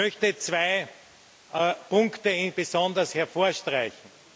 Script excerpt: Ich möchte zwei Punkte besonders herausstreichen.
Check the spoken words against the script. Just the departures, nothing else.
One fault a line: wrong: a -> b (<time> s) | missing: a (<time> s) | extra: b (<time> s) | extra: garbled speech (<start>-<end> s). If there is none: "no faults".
no faults